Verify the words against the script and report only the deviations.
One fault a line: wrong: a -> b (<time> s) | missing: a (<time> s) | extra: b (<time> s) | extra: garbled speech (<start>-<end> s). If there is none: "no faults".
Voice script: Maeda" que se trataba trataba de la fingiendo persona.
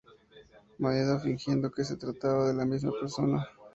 extra: fingiendo (1.2 s)
missing: trataba (2.5 s)
wrong: fingiendo -> misma (2.6 s)